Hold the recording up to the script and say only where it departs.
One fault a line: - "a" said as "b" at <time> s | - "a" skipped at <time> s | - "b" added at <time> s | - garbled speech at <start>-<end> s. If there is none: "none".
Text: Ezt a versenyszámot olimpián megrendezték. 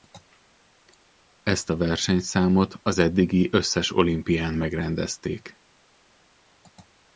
- "az eddigi összes" added at 2.8 s